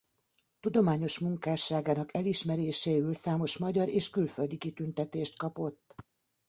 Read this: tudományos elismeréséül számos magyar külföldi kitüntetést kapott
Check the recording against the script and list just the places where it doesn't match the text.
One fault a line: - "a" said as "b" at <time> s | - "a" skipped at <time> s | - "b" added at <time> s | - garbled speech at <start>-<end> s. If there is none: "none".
- "munkásságának" added at 1.2 s
- "és" added at 3.9 s